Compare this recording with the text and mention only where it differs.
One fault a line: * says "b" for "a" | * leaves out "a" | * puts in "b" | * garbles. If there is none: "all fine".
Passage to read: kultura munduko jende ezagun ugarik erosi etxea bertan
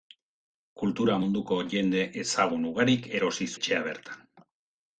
all fine